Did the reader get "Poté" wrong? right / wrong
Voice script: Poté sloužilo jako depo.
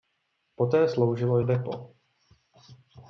right